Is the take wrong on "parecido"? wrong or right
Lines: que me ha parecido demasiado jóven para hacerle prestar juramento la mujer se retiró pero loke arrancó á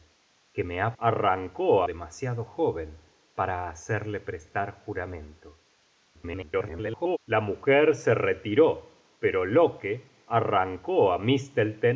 wrong